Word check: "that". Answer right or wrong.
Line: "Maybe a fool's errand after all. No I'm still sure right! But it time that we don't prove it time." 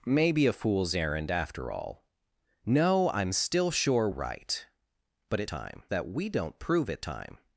right